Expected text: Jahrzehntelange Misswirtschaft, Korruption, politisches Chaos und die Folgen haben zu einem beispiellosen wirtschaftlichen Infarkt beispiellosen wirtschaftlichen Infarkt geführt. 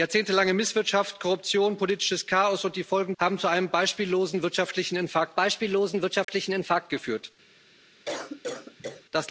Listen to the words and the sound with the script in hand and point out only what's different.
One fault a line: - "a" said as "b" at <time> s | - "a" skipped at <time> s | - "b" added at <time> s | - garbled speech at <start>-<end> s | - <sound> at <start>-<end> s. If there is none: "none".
- dropout at 6.2-6.3 s
- cough at 8.0-9.0 s